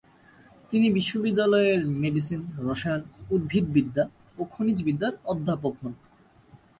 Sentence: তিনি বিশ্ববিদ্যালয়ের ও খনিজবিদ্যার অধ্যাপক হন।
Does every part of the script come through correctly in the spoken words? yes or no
no